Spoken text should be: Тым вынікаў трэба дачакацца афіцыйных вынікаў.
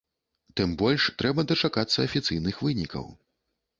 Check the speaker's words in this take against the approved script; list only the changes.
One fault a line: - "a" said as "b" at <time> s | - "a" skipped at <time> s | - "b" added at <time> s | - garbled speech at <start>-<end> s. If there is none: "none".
- "вынікаў" said as "больш" at 0.8 s